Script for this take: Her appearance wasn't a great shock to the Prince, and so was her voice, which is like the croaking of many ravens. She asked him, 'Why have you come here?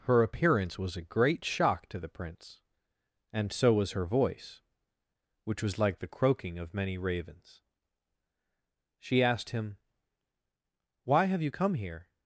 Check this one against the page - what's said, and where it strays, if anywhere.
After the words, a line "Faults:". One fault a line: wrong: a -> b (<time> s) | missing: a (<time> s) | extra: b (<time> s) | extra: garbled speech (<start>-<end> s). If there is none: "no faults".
Her appearance was a great shock to the Prince, and so was her voice, which was like the croaking of many ravens. She asked him, 'Why have you come here?
Faults:
wrong: wasn't -> was (0.8 s)
wrong: is -> was (5.6 s)